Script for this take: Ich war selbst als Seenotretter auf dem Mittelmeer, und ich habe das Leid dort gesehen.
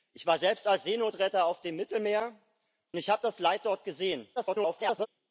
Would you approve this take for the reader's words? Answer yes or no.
no